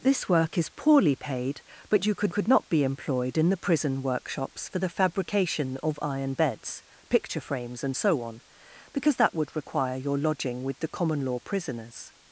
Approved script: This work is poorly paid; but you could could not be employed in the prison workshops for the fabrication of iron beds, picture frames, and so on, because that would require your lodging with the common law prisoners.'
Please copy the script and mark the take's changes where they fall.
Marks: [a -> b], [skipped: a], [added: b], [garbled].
This work is poorly paid; but you could could not be employed in the prison workshops for the fabrication of iron beds, picture frames, and so on, because that would require your lodging with the common law prisoners.'